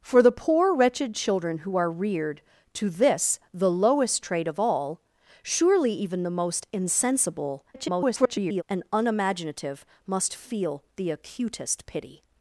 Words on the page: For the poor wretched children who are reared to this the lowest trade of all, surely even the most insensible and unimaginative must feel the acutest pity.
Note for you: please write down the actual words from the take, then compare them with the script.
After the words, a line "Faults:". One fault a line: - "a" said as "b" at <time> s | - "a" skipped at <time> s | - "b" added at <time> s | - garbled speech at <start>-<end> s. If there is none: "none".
For the poor wretched children who are reared to this the lowest trade of all, surely even the most insensible [garbled] and unimaginative must feel the acutest pity.
Faults:
- garbled speech at 7.7-8.6 s